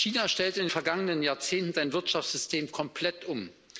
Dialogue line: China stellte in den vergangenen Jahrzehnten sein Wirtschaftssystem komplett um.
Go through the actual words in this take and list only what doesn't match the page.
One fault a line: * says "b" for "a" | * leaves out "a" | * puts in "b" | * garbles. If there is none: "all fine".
all fine